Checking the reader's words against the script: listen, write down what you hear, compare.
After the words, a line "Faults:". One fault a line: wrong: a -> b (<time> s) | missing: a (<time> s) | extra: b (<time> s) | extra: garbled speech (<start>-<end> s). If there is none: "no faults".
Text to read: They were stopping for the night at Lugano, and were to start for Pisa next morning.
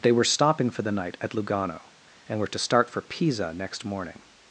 They were stopping for the night at Lugano, and were to start for Pisa next morning.
Faults:
no faults